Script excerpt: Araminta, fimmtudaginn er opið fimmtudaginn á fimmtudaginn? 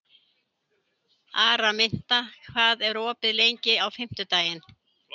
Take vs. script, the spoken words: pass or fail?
fail